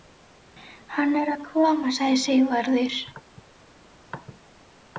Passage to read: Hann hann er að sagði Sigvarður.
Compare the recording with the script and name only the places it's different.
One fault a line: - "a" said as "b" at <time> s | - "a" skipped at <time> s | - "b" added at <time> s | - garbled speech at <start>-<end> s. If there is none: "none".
- "hann" skipped at 1.1 s
- "koma" added at 1.5 s